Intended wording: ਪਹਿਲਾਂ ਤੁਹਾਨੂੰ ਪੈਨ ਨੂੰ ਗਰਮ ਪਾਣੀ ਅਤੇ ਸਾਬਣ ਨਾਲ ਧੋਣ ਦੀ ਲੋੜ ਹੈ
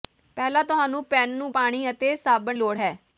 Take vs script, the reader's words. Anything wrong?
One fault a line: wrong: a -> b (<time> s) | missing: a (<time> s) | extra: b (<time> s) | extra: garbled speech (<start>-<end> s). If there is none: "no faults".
missing: ਗਰਮ (1.5 s)
missing: ਨਾਲ ਧੋਣ ਦੀ (2.6 s)